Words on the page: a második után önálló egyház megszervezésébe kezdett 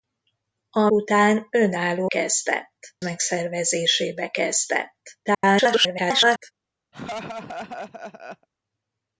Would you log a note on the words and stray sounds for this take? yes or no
yes